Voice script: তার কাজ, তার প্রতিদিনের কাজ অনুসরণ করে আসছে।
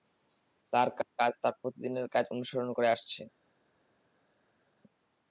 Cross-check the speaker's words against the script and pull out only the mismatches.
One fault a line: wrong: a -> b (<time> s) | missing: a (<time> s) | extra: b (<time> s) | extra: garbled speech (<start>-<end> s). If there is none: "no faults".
no faults